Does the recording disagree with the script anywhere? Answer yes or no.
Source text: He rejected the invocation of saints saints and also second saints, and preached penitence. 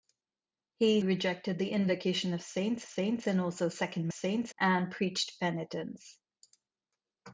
no